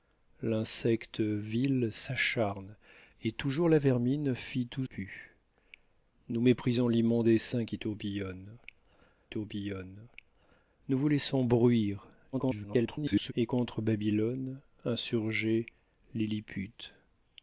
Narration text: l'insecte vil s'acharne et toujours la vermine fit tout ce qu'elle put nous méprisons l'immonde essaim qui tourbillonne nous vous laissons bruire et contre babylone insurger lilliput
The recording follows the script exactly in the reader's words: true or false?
false